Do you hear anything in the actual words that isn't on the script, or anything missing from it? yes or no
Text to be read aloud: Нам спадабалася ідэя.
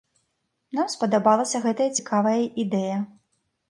yes